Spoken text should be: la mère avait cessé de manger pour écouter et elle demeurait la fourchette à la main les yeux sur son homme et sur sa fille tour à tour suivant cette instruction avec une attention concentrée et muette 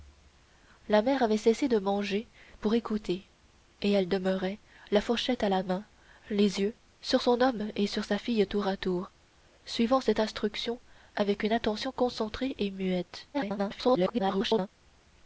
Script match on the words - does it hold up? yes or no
no